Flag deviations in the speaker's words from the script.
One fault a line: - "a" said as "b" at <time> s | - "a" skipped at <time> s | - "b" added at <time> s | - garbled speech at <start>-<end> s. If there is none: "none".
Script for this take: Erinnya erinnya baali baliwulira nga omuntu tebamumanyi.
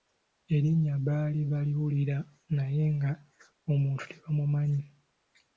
- "erinnya" skipped at 0.9 s
- "naye" added at 2.5 s